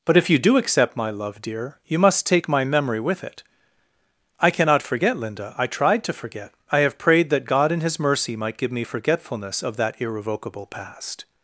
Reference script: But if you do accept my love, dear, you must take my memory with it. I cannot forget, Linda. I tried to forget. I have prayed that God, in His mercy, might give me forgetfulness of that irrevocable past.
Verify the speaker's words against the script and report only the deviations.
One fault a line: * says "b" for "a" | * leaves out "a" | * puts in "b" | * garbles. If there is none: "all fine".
all fine